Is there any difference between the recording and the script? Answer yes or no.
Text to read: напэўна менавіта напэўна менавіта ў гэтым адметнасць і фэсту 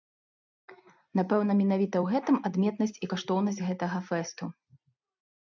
yes